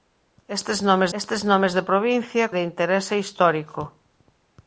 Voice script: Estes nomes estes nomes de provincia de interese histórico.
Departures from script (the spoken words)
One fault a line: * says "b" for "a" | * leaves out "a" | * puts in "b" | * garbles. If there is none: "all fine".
all fine